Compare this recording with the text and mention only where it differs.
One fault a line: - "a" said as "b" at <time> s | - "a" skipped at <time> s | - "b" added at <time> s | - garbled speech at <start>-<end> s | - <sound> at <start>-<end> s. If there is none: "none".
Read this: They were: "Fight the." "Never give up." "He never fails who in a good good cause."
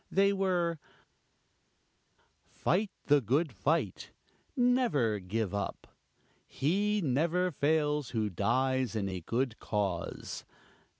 - "good fight" added at 3.2 s
- "dies" added at 8.3 s
- "good" skipped at 9.6 s